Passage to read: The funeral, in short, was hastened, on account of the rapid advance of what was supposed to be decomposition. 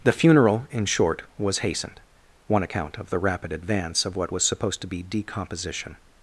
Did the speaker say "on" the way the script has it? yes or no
no